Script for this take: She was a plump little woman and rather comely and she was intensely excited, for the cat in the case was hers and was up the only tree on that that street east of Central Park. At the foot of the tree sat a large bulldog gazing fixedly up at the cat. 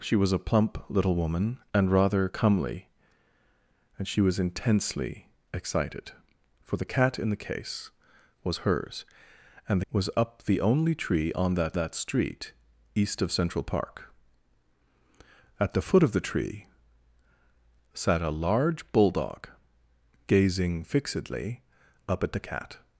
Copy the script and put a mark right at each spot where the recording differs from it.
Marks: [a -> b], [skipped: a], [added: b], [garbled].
She was a plump little woman and rather comely and she was intensely excited, for the cat in the case was hers and was up the only tree on that that street east of Central Park. At the foot of the tree sat a large bulldog gazing fixedly up at the cat.